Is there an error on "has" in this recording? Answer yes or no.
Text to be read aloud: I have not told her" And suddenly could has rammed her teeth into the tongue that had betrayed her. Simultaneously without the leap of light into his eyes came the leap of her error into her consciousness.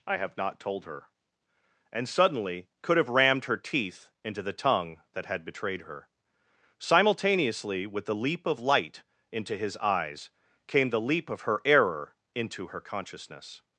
yes